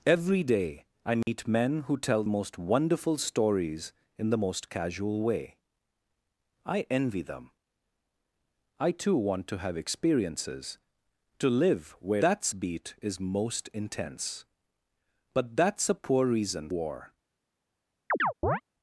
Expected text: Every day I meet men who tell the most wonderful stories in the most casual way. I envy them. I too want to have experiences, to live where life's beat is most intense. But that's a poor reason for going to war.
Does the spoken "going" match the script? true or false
false